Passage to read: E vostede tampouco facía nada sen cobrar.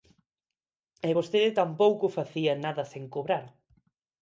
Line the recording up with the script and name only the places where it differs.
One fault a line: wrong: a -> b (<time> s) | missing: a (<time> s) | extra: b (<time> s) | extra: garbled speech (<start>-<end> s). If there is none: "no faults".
no faults